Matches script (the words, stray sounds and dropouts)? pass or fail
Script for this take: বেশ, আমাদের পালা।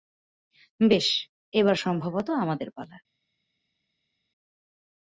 fail